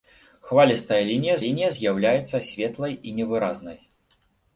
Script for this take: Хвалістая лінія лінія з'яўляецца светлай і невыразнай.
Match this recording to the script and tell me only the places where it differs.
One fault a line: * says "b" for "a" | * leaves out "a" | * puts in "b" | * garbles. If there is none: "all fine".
all fine